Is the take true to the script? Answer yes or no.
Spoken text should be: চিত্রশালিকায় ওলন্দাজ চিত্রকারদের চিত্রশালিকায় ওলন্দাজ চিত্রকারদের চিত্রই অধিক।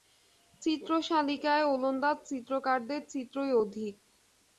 no